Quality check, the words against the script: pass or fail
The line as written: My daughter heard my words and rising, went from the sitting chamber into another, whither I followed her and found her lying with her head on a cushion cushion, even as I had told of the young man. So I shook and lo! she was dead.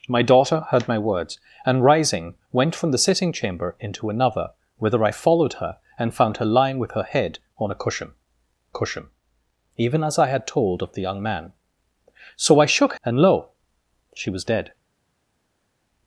pass